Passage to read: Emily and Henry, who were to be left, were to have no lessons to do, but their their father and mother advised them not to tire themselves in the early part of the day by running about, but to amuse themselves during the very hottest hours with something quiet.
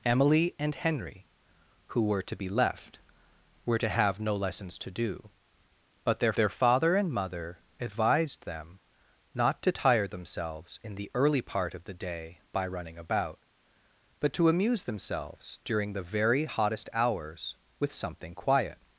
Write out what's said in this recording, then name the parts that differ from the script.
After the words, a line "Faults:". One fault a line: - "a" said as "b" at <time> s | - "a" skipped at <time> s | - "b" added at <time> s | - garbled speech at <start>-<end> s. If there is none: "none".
Emily and Henry, who were to be left, were to have no lessons to do, but their their father and mother advised them not to tire themselves in the early part of the day by running about, but to amuse themselves during the very hottest hours with something quiet.
Faults:
none